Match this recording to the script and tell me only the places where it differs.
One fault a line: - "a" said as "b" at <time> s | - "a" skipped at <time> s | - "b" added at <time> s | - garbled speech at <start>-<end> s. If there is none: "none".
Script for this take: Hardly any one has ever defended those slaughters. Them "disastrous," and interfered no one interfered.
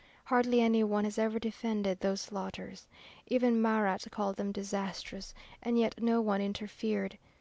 - "Even Marat called" added at 3.3 s
- "interfered" said as "yet" at 5.8 s